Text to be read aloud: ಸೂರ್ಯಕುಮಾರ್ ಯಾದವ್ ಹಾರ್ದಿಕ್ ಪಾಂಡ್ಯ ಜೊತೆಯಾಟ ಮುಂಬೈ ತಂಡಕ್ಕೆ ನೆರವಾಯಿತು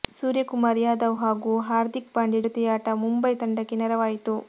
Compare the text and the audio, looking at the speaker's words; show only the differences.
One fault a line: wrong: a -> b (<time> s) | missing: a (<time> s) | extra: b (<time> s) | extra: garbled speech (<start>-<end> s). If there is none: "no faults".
extra: ಹಾಗೂ (1.2 s)